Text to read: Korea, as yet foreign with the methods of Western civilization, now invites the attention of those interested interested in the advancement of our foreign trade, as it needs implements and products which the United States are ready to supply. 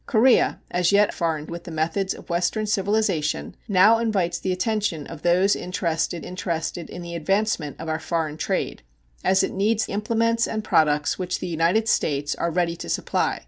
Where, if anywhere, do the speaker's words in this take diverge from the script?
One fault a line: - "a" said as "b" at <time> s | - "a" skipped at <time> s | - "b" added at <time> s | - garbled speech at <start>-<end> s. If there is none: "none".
none